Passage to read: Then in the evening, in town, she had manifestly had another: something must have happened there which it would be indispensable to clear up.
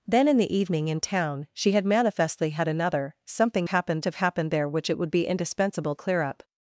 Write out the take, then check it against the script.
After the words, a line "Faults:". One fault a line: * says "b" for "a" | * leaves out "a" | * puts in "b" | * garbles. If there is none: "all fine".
Then in the evening, in town, she had manifestly had another: something happened have happened there which it would be indispensable clear up.
Faults:
* says "happened" for "must"
* leaves out "to"